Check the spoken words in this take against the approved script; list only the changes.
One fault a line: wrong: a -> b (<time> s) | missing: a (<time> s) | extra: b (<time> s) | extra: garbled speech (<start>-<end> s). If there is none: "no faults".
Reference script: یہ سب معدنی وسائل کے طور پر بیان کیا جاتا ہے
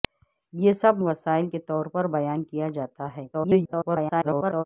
missing: معدنی (1.0 s)
extra: garbled speech (3.3-4.6 s)